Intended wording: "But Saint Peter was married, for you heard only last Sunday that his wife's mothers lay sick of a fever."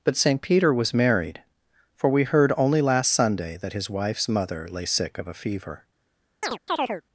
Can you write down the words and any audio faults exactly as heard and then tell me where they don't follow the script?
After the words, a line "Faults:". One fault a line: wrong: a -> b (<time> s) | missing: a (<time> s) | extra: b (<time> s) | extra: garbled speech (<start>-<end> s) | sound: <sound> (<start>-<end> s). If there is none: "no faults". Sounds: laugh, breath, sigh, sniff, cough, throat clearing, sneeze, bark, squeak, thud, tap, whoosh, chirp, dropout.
"But Saint Peter was married, for we heard only last Sunday that his wife's mother lay sick of a fever."
Faults:
wrong: you -> we (2.1 s)
wrong: mothers -> mother (4.3 s)
sound: chirp (6.4-7.0 s)